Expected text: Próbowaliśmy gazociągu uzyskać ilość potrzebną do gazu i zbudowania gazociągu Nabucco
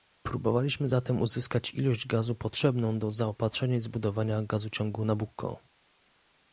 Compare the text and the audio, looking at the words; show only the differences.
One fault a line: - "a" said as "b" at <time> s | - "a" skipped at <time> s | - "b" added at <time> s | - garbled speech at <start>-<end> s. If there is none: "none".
- "gazociągu" said as "zatem" at 0.9 s
- "gazu" added at 2.1 s
- "gazu" said as "zaopatrzenia" at 3.1 s